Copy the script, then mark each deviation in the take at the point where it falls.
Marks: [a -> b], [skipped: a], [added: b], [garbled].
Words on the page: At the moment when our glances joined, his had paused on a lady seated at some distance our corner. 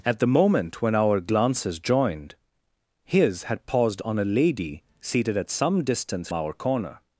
At the moment when our glances joined, his had paused on a lady seated at some distance our corner.